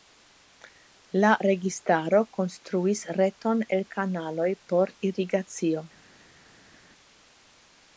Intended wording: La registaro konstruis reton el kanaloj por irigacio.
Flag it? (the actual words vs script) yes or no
no